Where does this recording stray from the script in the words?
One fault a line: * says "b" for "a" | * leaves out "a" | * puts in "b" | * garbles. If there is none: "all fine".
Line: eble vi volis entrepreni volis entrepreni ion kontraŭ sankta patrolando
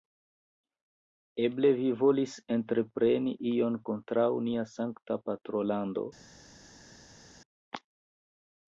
* leaves out "volis entrepreni"
* puts in "nia"